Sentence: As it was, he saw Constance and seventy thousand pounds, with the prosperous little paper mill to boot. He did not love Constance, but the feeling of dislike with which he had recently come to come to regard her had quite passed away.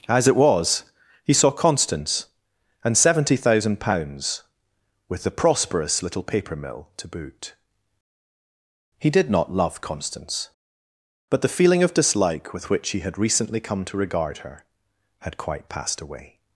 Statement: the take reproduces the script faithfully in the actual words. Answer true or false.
false